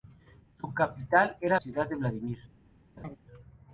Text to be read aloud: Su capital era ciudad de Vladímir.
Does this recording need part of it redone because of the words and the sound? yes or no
yes